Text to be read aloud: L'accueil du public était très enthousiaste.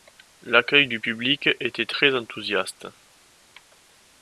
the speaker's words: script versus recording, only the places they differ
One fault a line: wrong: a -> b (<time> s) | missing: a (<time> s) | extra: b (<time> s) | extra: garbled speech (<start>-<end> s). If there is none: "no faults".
no faults